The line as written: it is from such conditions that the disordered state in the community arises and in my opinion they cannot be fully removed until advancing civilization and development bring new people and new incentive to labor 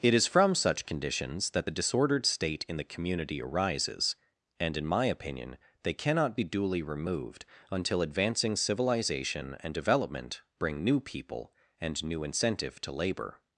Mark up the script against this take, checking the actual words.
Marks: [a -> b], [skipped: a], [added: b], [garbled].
it is from such conditions that the disordered state in the community arises and in my opinion they cannot be [fully -> duly] removed until advancing civilization and development bring new people and new incentive to labor